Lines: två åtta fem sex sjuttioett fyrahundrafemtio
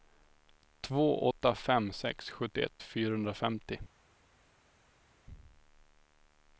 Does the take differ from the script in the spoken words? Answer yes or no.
no